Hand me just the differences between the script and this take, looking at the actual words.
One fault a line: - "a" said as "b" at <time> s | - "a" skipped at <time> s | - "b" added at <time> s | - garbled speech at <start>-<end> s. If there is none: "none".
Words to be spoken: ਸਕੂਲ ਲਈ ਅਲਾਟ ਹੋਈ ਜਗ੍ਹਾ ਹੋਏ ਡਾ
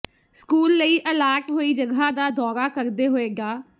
- "ਦਾ ਦੌਰਾ ਕਰਦੇ" added at 2.1 s